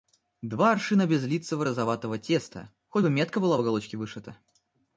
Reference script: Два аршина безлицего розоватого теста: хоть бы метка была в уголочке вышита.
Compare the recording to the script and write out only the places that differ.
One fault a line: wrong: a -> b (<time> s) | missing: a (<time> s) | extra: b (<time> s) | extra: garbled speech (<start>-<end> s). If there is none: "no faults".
no faults